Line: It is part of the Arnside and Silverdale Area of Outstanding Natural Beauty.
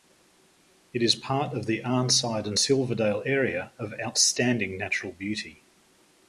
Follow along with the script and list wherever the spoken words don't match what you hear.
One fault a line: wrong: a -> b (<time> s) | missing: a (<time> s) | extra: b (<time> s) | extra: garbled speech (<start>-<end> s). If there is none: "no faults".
no faults